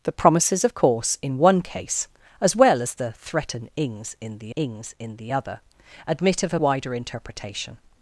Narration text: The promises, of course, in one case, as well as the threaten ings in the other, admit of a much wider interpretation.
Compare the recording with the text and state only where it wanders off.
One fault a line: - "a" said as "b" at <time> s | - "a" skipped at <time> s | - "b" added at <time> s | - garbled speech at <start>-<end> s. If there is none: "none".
- "ings in the" added at 4.5 s
- "much" skipped at 6.6 s